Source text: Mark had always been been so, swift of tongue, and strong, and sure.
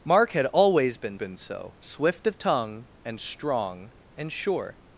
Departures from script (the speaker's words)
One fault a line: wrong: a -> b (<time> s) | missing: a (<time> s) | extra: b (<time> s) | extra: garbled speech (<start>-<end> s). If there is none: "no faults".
no faults